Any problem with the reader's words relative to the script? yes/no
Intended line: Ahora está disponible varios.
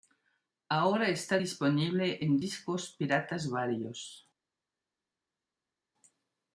yes